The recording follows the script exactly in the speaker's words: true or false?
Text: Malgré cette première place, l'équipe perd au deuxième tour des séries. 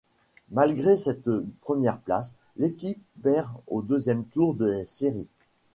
true